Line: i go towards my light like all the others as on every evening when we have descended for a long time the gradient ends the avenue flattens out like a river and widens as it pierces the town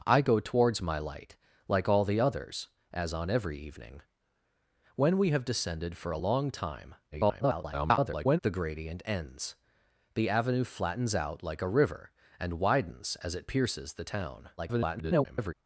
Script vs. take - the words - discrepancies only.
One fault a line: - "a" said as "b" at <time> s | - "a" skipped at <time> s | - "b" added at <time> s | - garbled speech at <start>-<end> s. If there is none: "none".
- garbled speech at 7.1-8.4 s
- garbled speech at 14.6-15.5 s